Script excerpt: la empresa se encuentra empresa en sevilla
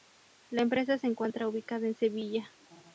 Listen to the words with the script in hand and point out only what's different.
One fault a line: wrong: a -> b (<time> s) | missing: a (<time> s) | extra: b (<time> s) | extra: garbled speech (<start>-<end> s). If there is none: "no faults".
wrong: empresa -> ubicada (1.5 s)